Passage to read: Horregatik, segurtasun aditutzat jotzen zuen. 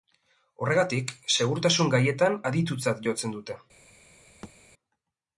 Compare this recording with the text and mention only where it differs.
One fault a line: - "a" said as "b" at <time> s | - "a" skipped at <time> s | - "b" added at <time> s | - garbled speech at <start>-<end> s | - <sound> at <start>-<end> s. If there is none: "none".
- "gaietan" added at 2.0 s
- "zuen" said as "dute" at 3.4 s
- thud at 4.4-4.5 s